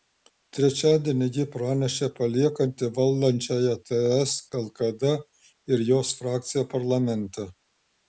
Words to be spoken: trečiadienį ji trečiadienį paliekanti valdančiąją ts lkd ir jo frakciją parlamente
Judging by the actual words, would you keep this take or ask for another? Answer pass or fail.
fail